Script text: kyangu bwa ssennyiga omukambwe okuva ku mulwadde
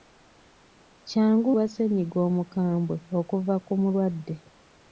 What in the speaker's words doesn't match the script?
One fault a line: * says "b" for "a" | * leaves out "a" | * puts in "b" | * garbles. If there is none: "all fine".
all fine